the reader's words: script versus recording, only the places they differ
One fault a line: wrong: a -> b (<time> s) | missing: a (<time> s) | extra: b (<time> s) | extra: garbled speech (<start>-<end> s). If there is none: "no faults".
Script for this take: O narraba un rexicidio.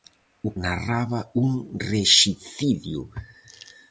no faults